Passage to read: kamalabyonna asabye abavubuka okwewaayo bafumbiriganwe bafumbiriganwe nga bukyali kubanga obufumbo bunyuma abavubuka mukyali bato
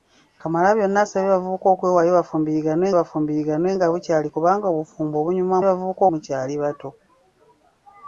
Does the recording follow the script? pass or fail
pass